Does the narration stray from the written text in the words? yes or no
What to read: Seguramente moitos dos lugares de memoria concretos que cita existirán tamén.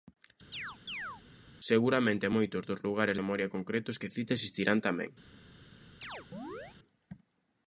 yes